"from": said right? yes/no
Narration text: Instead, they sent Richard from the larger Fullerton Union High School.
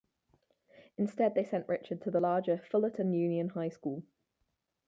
no